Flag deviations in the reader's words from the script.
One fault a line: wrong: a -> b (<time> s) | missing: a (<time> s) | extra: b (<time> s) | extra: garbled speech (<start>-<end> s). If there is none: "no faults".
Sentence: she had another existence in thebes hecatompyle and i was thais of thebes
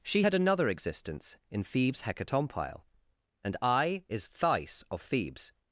wrong: was -> is (4.1 s)